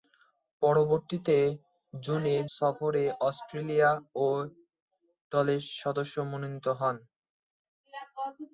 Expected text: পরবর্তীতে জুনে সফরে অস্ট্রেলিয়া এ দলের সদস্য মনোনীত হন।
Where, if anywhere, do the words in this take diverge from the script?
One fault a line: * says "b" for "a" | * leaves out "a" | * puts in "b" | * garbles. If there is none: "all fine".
all fine